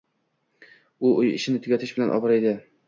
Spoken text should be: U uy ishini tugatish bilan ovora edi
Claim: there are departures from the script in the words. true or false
false